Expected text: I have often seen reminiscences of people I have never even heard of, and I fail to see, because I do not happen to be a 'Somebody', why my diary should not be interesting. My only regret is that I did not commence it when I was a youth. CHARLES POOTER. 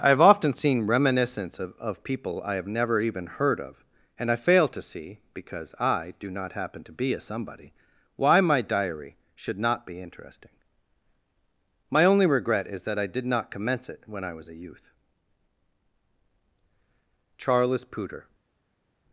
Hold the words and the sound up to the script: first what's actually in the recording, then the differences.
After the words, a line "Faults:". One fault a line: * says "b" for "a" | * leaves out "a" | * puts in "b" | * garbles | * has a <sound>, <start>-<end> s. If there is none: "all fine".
I have often seen reminiscence of of people I have never even heard of, and I fail to see, because I do not happen to be a 'Somebody', why my diary should not be interesting. My only regret is that I did not commence it when I was a youth. CHARLES POOTER.
Faults:
* says "reminiscence of" for "reminiscences"